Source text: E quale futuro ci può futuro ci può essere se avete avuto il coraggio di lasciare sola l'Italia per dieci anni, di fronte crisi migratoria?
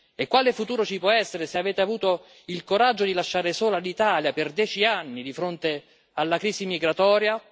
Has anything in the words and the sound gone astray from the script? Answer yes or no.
yes